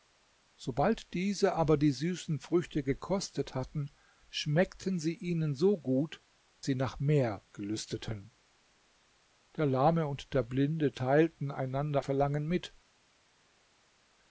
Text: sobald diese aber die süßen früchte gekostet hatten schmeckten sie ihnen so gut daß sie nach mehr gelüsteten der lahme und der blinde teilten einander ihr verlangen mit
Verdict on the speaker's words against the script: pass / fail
fail